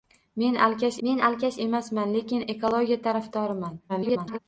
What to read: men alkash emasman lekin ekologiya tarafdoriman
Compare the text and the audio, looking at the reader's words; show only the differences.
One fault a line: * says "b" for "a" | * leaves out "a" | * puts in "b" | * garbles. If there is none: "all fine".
* puts in "men alkash"
* garbles